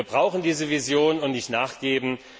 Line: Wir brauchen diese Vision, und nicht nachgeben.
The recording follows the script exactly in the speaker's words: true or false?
true